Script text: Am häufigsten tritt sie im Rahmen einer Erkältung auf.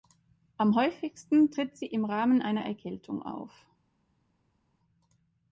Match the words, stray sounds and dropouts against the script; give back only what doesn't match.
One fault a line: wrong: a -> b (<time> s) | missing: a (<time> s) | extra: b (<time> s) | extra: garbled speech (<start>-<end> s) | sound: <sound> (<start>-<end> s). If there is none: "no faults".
no faults